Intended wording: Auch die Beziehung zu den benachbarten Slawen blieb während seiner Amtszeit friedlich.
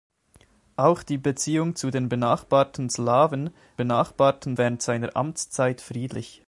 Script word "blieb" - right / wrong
wrong